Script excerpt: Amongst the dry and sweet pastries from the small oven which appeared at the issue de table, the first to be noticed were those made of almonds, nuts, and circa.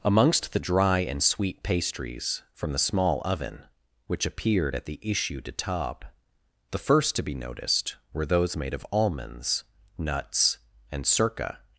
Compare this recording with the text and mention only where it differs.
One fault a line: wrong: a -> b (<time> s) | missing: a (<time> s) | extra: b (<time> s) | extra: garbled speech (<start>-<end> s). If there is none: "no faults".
no faults